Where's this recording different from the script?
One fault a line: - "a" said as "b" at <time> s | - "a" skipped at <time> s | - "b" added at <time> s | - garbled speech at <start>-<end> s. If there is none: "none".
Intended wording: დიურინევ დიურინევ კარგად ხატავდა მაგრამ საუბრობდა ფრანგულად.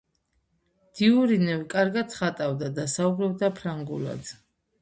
- "დიურინევ" skipped at 1.6 s
- "მაგრამ" said as "და" at 2.8 s